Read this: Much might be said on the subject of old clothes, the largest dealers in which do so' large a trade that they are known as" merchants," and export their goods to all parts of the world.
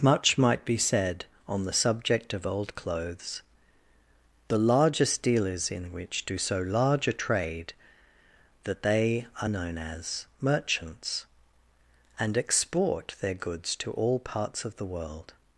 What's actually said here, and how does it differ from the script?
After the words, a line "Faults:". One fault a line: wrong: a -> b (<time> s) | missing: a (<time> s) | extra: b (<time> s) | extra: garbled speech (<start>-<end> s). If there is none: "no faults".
Much might be said on the subject of old clothes, the largest dealers in which do so' large a trade that they are known as" merchants," and export their goods to all parts of the world.
Faults:
no faults